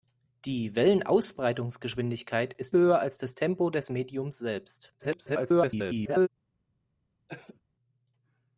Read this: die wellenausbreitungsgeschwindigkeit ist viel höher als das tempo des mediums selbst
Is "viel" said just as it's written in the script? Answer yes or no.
no